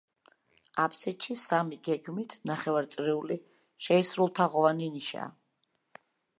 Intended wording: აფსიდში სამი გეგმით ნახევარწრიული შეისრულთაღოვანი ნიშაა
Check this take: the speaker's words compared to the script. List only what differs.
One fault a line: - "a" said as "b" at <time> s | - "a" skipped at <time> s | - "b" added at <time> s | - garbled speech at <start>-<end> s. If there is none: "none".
none